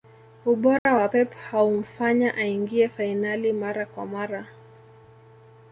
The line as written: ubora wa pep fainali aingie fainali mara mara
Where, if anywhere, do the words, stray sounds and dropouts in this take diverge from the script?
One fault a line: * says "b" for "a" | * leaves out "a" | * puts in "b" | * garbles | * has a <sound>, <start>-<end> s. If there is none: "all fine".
* has a dropout, 0.8-0.9 s
* says "haumfanya" for "fainali"
* puts in "kwa"